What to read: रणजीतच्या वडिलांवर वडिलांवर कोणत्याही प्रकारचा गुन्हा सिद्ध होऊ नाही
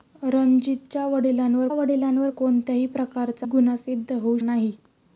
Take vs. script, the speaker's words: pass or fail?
pass